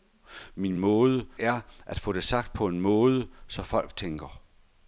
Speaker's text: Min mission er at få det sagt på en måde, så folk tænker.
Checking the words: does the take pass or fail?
fail